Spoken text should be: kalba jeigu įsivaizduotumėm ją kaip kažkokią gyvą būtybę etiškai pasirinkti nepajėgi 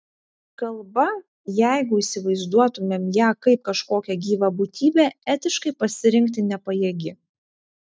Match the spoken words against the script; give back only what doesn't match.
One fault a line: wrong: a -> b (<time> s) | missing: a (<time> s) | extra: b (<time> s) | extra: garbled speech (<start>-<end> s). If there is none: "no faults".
no faults